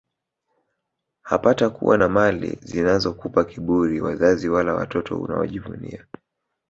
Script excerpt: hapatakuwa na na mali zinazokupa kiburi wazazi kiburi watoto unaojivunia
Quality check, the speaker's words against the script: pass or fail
fail